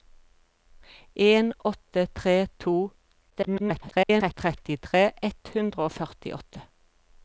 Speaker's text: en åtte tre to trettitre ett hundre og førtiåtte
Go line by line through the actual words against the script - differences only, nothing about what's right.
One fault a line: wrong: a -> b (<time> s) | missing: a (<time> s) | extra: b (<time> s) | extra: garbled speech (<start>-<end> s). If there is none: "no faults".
extra: garbled speech (3.3-4.3 s)